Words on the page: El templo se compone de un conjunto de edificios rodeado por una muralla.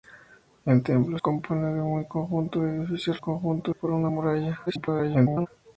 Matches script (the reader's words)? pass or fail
fail